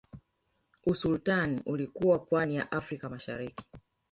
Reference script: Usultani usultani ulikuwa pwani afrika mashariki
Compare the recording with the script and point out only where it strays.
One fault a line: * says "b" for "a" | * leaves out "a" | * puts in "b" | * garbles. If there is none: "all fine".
* leaves out "usultani"
* puts in "ya"